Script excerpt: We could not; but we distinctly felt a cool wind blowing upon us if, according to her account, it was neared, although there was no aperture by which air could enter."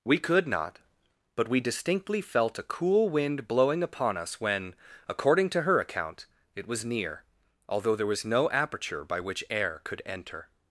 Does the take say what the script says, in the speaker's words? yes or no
no